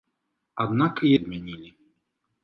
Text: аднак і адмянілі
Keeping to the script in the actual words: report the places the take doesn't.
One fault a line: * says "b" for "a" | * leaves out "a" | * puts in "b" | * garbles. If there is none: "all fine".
all fine